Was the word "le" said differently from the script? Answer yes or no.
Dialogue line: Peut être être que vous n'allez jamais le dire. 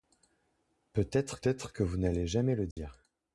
no